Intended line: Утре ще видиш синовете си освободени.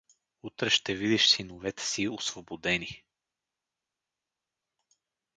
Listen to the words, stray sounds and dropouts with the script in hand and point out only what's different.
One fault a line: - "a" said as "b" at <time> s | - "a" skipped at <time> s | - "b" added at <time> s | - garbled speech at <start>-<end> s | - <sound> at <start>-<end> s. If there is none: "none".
none